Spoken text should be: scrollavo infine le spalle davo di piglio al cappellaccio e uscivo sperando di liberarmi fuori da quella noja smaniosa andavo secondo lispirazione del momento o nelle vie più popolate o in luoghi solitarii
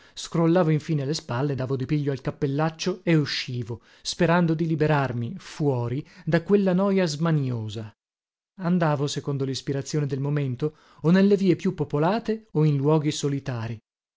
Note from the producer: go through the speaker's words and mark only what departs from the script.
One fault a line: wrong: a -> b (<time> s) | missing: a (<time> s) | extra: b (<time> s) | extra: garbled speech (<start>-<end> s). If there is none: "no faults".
no faults